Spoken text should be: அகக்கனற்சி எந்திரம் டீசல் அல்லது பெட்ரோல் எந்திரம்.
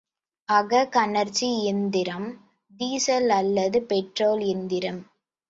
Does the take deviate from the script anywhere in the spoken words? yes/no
no